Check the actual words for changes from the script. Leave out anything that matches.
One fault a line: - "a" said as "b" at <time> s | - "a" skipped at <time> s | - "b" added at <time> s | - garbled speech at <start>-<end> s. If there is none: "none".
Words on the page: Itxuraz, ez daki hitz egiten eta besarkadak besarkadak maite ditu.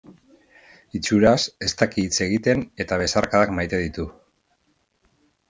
- "besarkadak" skipped at 3.5 s